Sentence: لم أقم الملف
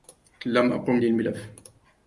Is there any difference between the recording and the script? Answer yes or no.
no